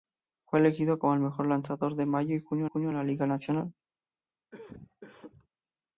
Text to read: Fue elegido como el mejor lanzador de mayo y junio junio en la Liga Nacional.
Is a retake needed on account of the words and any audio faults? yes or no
yes